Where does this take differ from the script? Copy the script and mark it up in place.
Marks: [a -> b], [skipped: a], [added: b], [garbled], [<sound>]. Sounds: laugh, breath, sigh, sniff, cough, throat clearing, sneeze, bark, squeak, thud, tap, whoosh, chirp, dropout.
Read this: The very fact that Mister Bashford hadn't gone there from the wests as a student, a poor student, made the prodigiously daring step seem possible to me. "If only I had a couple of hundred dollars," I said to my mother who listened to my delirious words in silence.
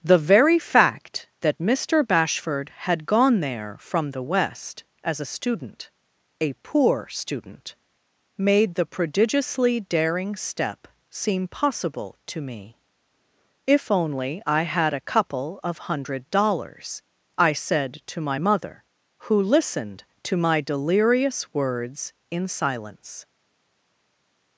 The very fact that Mister Bashford [hadn't -> had] gone there from the [wests -> west] as a student, a poor student, made the prodigiously daring step seem possible to me. "If only I had a couple of hundred dollars," I said to my mother who listened to my delirious words in silence.